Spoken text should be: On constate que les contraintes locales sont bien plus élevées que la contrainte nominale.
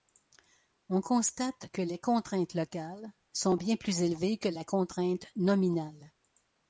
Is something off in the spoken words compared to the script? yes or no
no